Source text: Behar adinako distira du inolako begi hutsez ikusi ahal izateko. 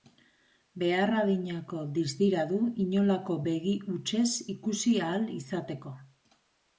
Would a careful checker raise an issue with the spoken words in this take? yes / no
no